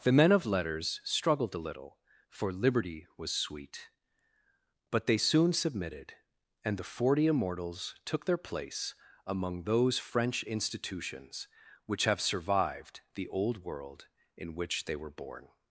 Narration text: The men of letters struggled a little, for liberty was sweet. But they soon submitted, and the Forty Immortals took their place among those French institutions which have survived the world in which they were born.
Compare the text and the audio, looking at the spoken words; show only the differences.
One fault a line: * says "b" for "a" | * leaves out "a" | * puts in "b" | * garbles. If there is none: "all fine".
* puts in "old"